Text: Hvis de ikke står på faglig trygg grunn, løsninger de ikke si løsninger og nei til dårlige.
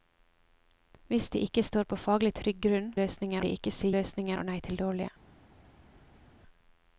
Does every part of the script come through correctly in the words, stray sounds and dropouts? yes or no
yes